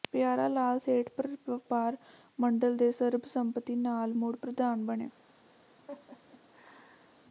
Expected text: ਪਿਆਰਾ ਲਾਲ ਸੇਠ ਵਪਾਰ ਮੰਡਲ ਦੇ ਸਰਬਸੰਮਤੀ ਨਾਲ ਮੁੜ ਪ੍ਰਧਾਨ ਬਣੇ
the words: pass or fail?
pass